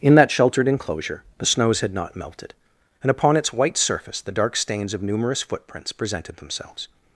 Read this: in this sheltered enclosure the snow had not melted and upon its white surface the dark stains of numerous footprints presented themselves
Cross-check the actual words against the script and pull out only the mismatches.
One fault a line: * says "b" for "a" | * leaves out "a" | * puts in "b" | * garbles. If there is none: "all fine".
* says "that" for "this"
* says "snows" for "snow"